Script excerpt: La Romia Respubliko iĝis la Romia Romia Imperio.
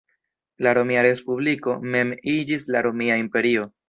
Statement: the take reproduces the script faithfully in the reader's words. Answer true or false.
false